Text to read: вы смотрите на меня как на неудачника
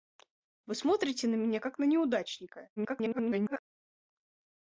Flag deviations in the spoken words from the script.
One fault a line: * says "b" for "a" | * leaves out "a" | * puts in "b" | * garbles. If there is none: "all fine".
* garbles